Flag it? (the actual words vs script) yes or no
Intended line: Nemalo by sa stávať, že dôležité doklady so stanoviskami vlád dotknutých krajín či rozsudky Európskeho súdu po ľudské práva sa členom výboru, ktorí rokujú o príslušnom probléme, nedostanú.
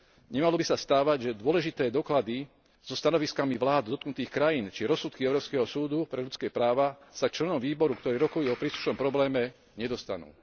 yes